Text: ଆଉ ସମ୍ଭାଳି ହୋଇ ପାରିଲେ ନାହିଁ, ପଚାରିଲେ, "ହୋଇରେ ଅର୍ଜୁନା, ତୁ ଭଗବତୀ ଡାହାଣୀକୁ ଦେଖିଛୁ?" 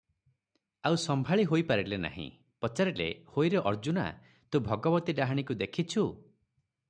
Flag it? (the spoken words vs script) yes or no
no